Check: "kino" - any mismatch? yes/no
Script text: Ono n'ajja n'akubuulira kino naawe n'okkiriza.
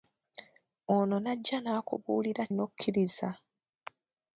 yes